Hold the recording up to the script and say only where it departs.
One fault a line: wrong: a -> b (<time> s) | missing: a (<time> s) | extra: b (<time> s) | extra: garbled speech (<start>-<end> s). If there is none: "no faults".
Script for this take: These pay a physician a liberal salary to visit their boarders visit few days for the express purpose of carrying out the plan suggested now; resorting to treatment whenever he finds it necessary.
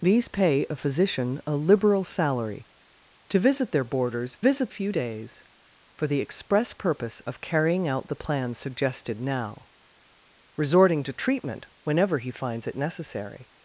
no faults